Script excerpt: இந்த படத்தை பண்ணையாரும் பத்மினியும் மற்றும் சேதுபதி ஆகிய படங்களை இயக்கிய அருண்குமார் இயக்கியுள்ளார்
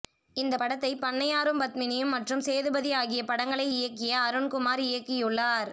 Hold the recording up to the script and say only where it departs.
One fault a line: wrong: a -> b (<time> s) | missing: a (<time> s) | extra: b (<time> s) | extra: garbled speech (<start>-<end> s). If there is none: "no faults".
no faults